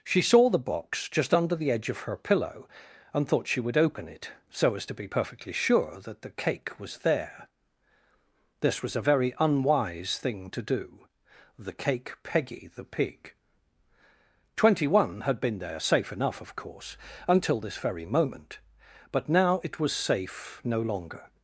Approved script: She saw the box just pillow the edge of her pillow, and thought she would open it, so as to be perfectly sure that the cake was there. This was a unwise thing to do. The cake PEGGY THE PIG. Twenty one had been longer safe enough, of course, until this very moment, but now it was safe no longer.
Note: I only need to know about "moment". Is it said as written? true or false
true